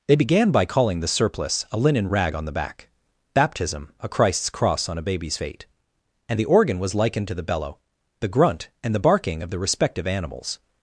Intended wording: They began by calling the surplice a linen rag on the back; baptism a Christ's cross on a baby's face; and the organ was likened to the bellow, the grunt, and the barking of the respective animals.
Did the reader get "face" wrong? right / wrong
wrong